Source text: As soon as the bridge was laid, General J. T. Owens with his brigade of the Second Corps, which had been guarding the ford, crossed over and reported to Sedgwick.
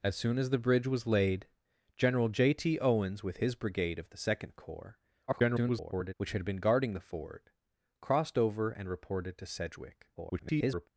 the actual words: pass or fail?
fail